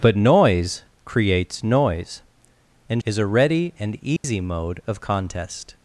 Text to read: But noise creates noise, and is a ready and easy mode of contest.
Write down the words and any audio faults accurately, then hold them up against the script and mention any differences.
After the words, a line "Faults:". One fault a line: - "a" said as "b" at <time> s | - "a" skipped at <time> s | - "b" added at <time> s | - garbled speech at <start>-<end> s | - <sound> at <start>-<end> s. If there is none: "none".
But noise creates noise, and is a ready and easy mode of contest.
Faults:
- dropout at 4.2-4.2 s